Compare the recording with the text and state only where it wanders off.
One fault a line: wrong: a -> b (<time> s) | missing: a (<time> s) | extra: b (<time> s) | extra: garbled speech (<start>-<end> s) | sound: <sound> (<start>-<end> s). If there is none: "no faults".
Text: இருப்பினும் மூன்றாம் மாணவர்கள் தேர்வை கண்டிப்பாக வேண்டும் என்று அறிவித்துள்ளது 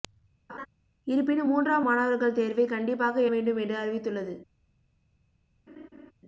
sound: laugh (0.5-0.7 s)
sound: laugh (5.7-6.1 s)